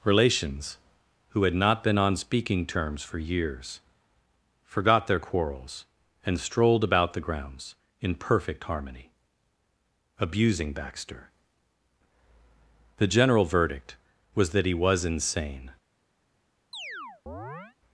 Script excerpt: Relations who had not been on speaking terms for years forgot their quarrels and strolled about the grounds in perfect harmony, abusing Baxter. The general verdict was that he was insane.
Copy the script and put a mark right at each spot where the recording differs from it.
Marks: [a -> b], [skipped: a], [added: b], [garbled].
Relations who had not been on speaking terms for years forgot their quarrels and strolled about the grounds in perfect harmony, abusing Baxter. The general verdict was that he was insane.